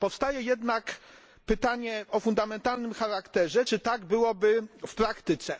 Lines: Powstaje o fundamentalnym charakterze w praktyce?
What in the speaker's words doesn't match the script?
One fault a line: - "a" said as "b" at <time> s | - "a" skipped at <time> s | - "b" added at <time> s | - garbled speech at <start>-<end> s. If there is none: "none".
- "jednak pytanie" added at 0.4 s
- "czy tak byłoby" added at 3.6 s